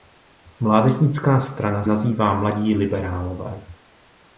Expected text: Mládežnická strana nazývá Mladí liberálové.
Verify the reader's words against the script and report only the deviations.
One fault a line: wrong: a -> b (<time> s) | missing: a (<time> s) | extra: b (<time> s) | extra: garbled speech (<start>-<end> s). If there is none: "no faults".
no faults